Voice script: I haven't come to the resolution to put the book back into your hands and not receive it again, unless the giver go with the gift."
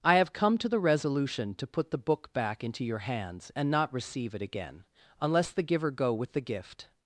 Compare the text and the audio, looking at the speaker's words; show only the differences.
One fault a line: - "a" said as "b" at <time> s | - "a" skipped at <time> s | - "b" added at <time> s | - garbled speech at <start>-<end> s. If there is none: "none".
- "haven't" said as "have" at 0.1 s